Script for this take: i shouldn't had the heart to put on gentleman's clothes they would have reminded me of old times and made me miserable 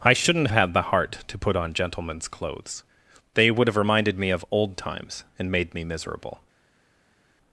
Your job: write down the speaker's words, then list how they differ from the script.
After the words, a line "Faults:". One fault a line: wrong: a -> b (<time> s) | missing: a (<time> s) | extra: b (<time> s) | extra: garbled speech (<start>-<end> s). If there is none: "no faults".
i shouldn't had the heart to put on gentleman's clothes they would have reminded me of old times and made me miserable
Faults:
no faults